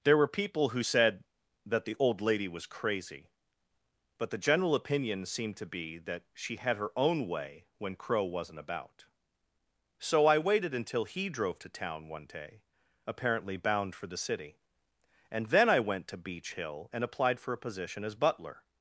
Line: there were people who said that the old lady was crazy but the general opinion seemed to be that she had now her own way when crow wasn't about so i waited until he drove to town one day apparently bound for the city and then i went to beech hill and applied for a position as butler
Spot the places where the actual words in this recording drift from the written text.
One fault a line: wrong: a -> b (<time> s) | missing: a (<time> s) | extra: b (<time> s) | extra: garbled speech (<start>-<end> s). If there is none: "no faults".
missing: now (6.8 s)